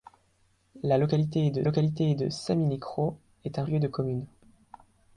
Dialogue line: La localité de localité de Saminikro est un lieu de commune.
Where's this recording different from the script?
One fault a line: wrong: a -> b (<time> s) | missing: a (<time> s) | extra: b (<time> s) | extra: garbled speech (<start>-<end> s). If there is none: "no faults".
no faults